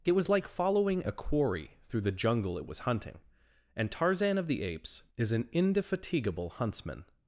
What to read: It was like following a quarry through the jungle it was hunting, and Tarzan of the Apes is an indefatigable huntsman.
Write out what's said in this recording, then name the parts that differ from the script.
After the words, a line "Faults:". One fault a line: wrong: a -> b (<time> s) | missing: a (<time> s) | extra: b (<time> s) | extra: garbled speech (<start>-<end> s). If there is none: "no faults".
It was like following a quarry through the jungle it was hunting, and Tarzan of the Apes is an indefatigable huntsman.
Faults:
no faults